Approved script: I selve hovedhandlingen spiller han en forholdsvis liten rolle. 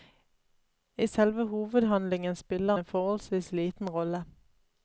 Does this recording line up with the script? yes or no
no